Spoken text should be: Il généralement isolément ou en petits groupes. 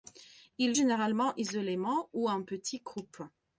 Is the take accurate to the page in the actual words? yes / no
yes